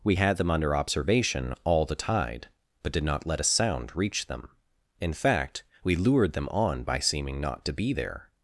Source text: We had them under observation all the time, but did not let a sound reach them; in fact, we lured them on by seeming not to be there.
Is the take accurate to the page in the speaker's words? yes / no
no